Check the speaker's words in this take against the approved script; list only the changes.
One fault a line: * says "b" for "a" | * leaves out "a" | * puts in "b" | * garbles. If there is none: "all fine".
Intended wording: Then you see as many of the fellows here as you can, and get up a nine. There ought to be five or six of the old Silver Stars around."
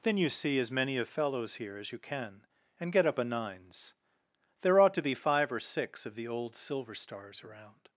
* leaves out "the"
* says "nines" for "nine"